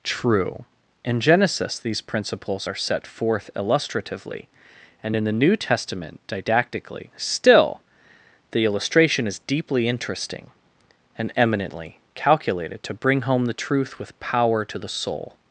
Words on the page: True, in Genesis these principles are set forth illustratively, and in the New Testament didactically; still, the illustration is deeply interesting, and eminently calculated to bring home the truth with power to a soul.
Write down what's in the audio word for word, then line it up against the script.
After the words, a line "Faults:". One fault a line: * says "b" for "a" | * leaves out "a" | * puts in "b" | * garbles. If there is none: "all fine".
True, in Genesis these principles are set forth illustratively, and in the New Testament didactically; still, the illustration is deeply interesting, and eminently calculated to bring home the truth with power to the soul.
Faults:
* says "the" for "a"